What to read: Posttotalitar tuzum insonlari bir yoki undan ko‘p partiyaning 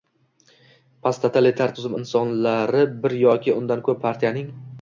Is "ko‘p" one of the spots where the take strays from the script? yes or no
no